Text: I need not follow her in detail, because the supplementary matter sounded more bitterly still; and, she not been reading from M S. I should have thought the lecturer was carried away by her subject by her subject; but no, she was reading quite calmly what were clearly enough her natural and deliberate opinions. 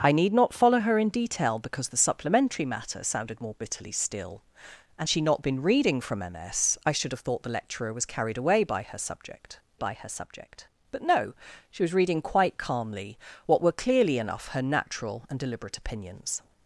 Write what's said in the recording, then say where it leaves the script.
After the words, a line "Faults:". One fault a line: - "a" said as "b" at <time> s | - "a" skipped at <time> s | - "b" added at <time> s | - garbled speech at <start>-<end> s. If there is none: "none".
I need not follow her in detail, because the supplementary matter sounded more bitterly still; and, she not been reading from M S. I should have thought the lecturer was carried away by her subject by her subject; but no, she was reading quite calmly what were clearly enough her natural and deliberate opinions.
Faults:
none